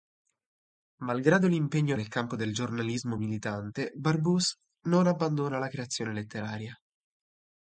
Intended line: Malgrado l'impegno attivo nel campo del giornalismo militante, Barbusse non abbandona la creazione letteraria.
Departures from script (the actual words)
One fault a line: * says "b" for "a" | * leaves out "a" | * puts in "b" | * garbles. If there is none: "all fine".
* leaves out "attivo"